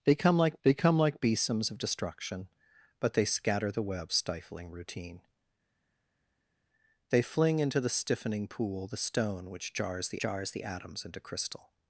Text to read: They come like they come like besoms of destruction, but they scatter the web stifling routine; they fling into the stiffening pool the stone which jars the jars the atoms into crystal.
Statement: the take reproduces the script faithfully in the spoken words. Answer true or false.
true